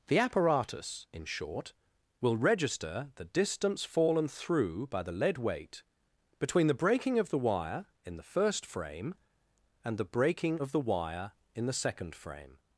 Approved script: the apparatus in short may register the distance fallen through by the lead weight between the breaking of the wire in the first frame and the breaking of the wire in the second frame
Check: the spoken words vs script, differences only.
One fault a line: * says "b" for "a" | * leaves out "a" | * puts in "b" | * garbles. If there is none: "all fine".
* says "will" for "may"